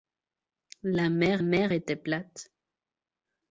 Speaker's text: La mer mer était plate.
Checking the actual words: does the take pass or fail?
pass